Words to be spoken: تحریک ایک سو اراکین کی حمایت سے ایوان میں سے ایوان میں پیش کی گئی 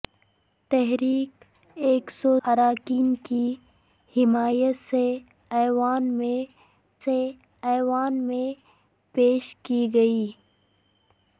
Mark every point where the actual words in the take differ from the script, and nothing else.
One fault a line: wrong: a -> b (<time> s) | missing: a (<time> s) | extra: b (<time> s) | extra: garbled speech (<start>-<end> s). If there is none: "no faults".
no faults